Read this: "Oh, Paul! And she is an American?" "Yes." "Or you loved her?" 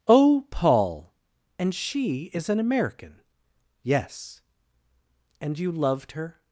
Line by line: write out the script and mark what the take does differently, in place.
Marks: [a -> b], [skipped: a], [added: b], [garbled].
"Oh, Paul! And she is an American?" "Yes." ["Or -> And] you loved her?"